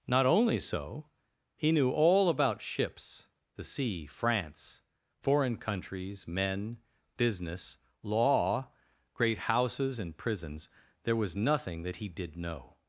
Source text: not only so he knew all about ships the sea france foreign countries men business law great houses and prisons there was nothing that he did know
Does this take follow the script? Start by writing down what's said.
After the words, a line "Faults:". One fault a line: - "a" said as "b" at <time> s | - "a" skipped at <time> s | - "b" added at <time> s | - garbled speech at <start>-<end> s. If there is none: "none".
not only so he knew all about ships the sea france foreign countries men business law great houses and prisons there was nothing that he did know
Faults:
none